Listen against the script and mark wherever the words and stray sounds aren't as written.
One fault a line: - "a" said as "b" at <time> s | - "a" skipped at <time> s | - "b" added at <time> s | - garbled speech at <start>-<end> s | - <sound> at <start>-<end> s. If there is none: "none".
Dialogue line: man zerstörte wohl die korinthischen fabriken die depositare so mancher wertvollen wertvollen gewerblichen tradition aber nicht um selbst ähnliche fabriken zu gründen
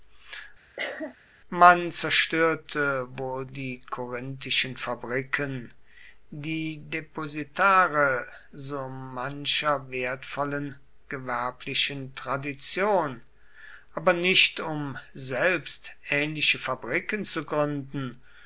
- cough at 0.8-1.2 s
- "wertvollen" skipped at 10.8 s